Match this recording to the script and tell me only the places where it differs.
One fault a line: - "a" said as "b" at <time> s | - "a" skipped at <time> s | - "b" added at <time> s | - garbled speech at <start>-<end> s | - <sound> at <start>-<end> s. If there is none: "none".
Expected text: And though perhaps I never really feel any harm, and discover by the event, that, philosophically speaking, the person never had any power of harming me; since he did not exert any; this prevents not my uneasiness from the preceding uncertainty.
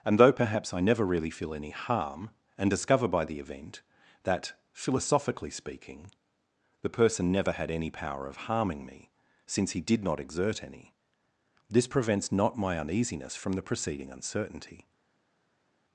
none